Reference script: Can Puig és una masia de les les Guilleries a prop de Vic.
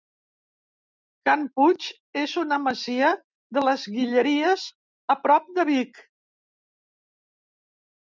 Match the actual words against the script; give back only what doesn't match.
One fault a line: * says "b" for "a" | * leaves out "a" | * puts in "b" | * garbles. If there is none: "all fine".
* leaves out "les"